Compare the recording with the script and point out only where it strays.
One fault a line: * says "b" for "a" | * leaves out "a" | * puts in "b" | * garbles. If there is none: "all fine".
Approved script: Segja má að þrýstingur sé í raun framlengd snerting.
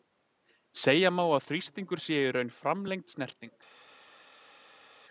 all fine